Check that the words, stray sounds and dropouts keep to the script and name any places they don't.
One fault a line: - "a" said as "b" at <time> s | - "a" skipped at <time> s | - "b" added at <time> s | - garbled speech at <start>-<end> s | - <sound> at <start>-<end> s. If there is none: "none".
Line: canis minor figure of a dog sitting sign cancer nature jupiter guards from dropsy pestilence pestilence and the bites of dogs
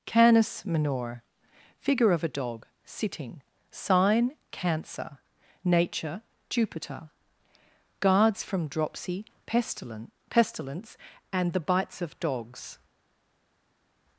none